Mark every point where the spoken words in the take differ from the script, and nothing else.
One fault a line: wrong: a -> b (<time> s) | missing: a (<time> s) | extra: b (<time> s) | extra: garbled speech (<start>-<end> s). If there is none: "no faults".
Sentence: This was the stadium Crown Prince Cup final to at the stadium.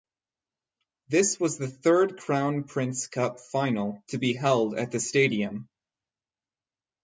wrong: stadium -> third (1.7 s)
extra: be held (4.2 s)